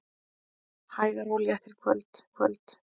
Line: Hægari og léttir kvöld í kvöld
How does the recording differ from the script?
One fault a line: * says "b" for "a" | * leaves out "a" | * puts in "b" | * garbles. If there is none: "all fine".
all fine